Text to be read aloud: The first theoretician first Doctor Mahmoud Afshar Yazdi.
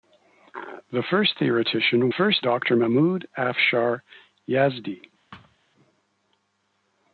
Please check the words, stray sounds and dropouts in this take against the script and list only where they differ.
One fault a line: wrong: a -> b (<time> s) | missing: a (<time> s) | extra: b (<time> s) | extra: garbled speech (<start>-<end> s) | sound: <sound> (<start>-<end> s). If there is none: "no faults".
sound: thud (5.3-5.6 s)